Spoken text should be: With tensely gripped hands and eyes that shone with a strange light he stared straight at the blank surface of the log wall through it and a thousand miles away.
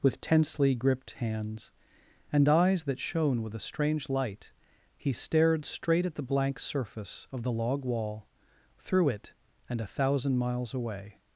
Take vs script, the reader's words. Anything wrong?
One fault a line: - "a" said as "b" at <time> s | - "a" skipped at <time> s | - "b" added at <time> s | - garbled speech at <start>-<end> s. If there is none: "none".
none